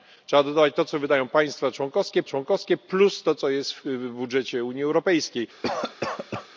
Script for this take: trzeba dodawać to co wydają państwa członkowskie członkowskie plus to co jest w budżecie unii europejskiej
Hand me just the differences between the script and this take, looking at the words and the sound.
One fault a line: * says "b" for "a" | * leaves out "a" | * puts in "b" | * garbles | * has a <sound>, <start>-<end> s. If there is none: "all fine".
* has a cough, 5.6-6.5 s